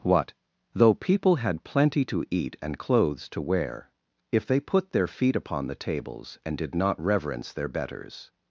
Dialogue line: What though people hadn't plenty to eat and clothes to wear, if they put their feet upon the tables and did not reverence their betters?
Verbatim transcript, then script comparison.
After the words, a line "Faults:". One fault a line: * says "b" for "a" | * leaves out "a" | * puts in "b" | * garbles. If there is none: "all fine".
What though people had plenty to eat and clothes to wear, if they put their feet upon the tables and did not reverence their betters?
Faults:
* says "had" for "hadn't"